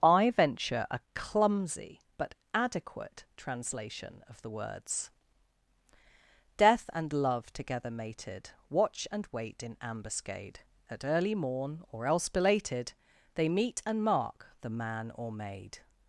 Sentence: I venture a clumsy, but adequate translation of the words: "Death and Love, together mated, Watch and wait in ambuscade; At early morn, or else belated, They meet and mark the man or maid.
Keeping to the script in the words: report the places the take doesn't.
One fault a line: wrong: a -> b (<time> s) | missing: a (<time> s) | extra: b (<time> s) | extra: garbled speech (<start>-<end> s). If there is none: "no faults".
no faults